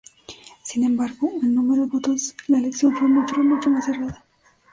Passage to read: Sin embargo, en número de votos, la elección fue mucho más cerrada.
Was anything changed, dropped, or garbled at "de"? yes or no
yes